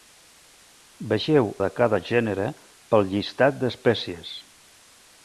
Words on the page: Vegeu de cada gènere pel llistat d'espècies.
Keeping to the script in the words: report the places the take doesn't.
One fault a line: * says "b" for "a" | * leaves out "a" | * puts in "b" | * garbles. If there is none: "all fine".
all fine